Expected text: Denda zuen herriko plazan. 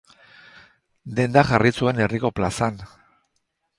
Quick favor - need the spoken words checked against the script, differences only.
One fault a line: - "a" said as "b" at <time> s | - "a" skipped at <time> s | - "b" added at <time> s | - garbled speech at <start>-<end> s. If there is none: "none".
- "jarri" added at 1.5 s